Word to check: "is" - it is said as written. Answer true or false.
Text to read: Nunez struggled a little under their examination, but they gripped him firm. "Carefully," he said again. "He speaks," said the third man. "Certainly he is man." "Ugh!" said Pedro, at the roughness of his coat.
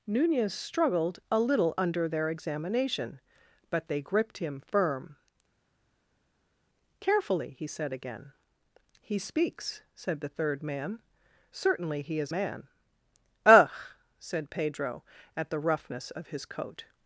true